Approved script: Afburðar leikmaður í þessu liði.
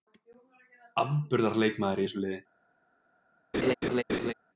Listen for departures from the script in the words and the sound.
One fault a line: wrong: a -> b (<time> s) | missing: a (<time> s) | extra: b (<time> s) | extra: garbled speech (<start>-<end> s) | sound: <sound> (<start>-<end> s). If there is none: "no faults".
sound: laugh (3.5-4.3 s)